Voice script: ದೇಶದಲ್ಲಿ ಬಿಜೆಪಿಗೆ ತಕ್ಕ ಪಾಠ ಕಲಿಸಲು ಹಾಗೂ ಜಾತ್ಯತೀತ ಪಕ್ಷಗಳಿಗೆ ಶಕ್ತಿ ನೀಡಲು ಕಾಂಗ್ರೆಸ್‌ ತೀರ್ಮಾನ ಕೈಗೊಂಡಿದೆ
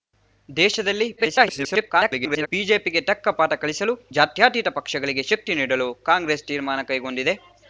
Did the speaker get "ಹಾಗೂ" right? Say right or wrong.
wrong